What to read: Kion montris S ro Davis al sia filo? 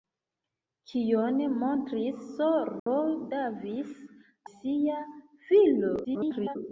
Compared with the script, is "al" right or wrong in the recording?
wrong